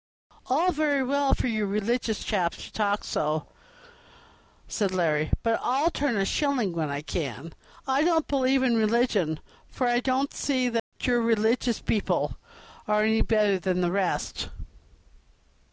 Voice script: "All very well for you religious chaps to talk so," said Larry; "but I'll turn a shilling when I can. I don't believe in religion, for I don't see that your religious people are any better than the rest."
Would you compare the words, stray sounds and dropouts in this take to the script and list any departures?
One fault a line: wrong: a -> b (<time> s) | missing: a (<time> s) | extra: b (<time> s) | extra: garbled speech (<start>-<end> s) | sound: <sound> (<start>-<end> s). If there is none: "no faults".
sound: dropout (10.8-10.9 s)